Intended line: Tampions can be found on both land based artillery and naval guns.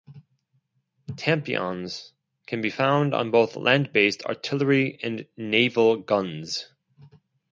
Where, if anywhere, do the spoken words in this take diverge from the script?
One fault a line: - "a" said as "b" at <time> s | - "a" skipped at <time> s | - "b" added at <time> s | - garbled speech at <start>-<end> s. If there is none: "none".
none